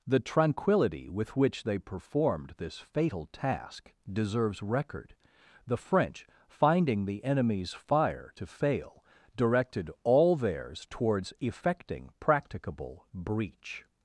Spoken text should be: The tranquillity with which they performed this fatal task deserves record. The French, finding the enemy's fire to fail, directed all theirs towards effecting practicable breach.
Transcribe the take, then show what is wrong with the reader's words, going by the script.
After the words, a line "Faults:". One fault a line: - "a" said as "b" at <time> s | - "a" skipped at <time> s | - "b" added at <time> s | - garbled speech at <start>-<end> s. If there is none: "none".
The tranquillity with which they performed this fatal task deserves record. The French, finding the enemy's fire to fail, directed all theirs towards effecting practicable breach.
Faults:
none